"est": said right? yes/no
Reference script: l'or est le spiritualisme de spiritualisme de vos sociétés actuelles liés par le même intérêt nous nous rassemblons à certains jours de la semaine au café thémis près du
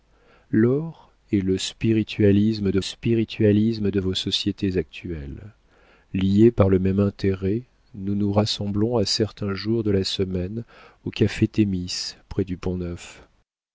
yes